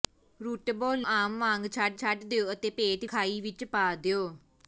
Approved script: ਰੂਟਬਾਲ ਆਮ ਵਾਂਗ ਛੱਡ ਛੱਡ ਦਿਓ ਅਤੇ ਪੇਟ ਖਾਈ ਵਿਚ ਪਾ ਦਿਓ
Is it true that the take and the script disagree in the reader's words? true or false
false